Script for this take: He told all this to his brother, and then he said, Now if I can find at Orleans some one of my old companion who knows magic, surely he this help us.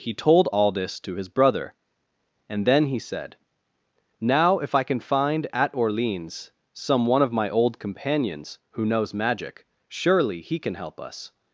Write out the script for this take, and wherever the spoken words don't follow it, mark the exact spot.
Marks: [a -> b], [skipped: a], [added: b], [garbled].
He told all this to his brother, and then he said, Now if I can find at Orleans some one of my old [companion -> companions] who knows magic, surely he [this -> can] help us.